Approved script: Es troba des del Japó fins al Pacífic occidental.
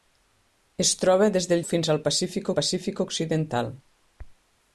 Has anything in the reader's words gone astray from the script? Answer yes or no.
yes